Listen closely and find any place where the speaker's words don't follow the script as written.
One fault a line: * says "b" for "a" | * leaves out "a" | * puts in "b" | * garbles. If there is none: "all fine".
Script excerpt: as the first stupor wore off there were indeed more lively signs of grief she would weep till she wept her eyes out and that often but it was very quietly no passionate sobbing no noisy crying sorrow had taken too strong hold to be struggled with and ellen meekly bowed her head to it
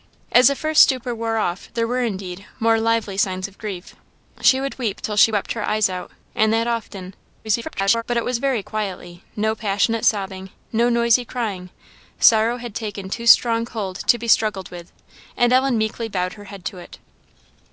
* garbles